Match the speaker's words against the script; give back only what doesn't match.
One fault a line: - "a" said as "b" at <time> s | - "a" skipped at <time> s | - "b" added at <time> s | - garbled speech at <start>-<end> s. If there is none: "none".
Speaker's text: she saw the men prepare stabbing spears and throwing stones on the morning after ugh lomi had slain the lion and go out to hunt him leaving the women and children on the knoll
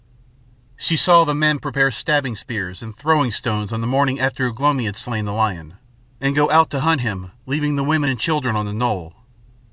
none